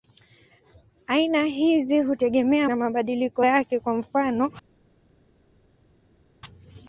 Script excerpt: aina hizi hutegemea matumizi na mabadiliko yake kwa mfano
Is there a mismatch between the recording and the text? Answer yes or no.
yes